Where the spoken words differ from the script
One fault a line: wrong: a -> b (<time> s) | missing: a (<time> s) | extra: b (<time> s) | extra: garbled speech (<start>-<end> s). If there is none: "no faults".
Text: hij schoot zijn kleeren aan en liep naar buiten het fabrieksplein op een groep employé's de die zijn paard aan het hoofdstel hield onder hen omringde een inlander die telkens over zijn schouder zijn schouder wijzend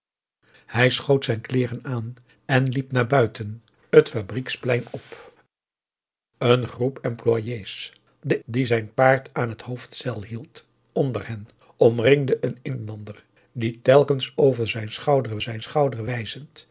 no faults